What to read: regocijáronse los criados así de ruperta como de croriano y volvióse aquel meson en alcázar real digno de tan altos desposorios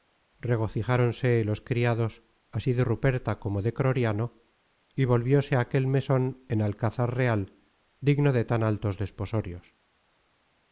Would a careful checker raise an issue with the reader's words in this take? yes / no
no